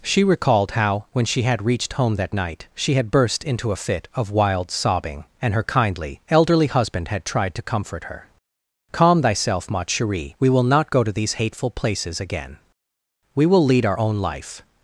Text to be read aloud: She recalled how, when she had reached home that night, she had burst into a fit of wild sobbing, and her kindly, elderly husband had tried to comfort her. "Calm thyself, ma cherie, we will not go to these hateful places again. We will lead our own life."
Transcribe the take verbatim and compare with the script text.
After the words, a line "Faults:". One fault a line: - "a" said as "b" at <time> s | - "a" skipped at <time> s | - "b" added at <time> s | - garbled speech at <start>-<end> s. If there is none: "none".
She recalled how, when she had reached home that night, she had burst into a fit of wild sobbing, and her kindly, elderly husband had tried to comfort her. "Calm thyself, ma cherie, we will not go to these hateful places again. We will lead our own life."
Faults:
none